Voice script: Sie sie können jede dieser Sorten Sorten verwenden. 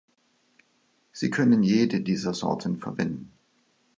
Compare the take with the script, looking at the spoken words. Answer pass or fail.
fail